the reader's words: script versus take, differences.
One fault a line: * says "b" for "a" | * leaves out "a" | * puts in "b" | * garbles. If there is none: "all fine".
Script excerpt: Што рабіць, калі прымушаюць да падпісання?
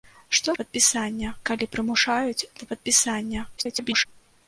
* says "падпісання" for "рабіць"
* garbles